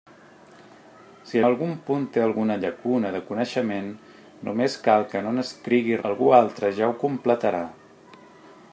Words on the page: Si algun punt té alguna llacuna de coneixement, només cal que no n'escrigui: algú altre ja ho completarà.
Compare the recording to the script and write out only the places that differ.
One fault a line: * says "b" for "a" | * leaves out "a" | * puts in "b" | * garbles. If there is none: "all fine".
all fine